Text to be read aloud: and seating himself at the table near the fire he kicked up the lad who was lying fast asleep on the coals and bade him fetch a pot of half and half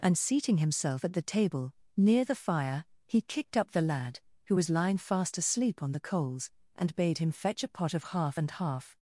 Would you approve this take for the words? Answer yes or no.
yes